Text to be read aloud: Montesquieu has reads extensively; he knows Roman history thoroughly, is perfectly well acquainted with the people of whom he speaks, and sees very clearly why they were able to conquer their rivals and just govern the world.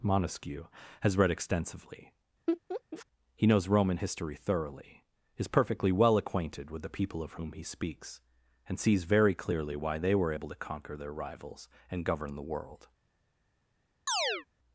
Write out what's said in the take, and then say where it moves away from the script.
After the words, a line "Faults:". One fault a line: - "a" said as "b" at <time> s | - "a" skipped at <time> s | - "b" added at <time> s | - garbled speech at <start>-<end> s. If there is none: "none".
Montesquieu has read extensively; he knows Roman history thoroughly, is perfectly well acquainted with the people of whom he speaks, and sees very clearly why they were able to conquer their rivals and govern the world.
Faults:
- "reads" said as "read" at 1.1 s
- "just" skipped at 12.0 s